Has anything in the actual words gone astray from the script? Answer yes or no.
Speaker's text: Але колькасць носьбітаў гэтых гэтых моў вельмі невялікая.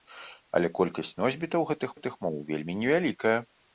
no